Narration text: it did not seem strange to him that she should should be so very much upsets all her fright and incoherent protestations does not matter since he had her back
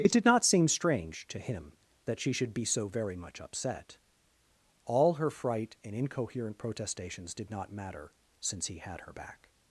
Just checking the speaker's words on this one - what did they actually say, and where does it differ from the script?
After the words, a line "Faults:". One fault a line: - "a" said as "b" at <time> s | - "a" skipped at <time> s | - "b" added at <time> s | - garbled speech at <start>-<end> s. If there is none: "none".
it did not seem strange to him that she should be so very much upset all her fright and incoherent protestations did not matter since he had her back
Faults:
- "should" skipped at 2.5 s
- "upsets" said as "upset" at 3.4 s
- "does" said as "did" at 7.3 s